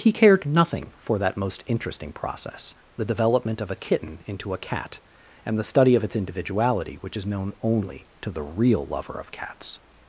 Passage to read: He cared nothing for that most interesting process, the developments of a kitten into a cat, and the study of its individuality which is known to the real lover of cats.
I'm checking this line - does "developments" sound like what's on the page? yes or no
no